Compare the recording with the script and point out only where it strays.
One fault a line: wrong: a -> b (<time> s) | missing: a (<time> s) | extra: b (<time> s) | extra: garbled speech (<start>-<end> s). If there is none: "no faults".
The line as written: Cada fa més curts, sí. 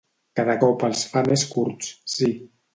extra: cop els (0.6 s)